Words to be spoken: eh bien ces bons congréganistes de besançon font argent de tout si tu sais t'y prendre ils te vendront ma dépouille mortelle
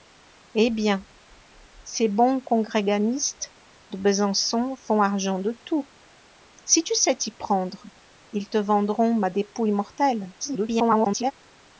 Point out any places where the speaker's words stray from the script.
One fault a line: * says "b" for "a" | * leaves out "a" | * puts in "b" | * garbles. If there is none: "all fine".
* garbles